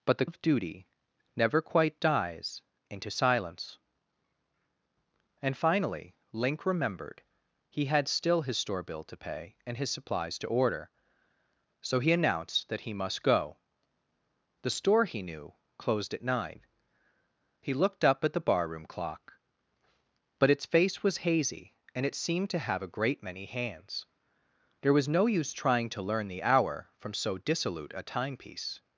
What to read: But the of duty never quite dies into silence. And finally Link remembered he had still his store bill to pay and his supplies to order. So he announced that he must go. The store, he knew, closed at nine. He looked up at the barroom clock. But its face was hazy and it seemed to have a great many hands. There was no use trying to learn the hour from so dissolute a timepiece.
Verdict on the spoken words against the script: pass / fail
pass